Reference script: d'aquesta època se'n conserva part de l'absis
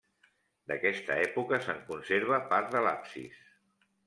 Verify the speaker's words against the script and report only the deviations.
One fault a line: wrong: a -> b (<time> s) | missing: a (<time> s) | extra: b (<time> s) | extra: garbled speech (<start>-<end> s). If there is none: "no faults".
no faults